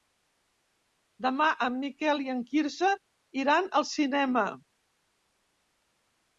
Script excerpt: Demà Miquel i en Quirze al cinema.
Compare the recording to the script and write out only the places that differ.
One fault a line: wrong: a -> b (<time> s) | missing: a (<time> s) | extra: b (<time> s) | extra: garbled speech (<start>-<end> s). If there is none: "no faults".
extra: en (1.6 s)
extra: iran (3.4 s)